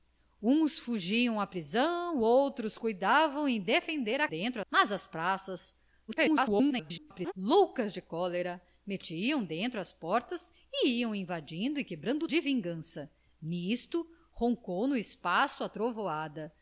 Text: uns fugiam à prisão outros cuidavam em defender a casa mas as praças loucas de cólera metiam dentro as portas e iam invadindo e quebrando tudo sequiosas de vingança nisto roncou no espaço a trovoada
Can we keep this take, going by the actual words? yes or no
no